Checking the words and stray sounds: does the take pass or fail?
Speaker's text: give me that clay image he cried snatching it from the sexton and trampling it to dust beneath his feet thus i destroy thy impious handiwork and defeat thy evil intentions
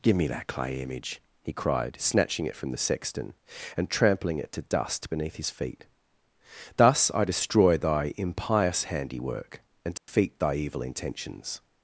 fail